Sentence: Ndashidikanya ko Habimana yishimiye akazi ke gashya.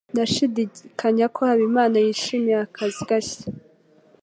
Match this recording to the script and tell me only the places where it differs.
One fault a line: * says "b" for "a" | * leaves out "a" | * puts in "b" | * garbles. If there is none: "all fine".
* leaves out "ke"